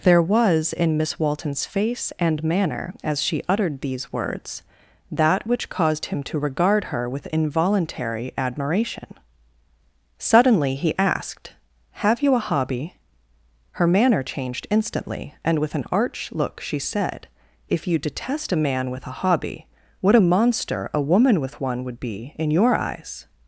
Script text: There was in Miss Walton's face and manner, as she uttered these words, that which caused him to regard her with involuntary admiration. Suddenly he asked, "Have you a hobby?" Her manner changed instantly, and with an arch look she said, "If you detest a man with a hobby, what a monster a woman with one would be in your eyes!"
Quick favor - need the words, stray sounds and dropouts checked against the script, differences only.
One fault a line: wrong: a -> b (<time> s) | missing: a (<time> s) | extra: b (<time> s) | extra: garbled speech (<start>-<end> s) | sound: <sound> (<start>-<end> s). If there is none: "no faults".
no faults